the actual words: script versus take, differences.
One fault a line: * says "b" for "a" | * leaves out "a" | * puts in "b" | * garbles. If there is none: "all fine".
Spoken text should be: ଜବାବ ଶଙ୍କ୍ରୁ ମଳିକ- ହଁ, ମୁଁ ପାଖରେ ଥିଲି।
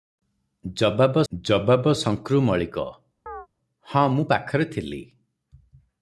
* puts in "ଜବାବ"